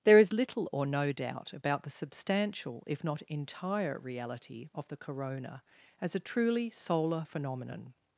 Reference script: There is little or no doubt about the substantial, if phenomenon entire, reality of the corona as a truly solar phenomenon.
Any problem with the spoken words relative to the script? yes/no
yes